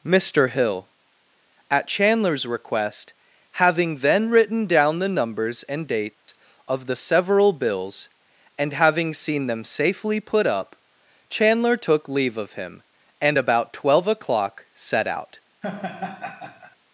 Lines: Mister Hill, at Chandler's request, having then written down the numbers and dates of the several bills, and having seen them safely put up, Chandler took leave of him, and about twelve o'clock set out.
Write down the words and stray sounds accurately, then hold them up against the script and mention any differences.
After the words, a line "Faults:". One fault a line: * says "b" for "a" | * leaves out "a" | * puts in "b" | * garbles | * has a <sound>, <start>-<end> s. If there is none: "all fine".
Mister Hill, at Chandler's request, having then written down the numbers and dates of the several bills, and having seen them safely put up, Chandler took leave of him, and about twelve o'clock set out.
Faults:
* has a dropout, 6.1-6.3 s
* has a laugh, 15.6-16.8 s